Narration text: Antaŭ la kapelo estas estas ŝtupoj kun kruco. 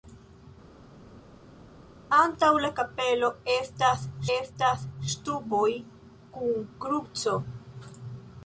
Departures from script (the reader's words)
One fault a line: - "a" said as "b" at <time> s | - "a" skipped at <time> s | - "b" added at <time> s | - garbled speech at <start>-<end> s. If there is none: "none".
none